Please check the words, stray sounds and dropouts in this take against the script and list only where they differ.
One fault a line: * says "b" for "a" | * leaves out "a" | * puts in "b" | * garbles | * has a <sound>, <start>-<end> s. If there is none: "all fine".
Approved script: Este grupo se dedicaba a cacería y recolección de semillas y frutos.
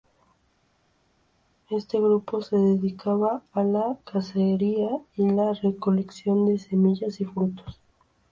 * puts in "la"
* puts in "la"